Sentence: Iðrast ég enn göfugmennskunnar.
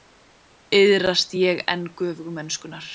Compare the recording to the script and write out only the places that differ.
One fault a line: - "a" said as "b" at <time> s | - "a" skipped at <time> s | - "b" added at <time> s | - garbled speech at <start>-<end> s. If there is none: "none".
none